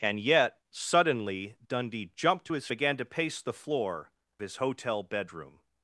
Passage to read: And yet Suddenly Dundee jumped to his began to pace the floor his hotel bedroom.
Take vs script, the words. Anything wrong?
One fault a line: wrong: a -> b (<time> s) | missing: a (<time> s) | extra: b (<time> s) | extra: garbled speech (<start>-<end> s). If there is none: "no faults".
no faults